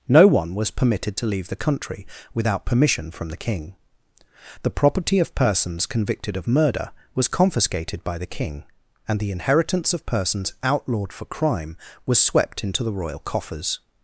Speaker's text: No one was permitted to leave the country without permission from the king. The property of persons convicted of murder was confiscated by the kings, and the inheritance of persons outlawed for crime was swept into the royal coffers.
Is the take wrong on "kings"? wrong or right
wrong